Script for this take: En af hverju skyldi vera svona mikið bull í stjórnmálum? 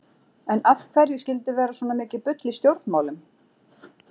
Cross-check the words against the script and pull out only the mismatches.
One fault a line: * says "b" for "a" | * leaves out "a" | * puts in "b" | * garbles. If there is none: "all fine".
all fine